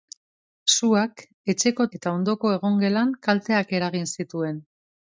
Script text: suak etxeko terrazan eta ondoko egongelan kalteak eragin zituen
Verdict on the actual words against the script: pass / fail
fail